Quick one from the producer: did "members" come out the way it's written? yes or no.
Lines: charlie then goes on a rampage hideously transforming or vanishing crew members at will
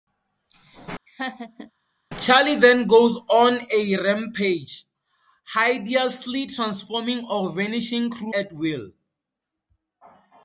no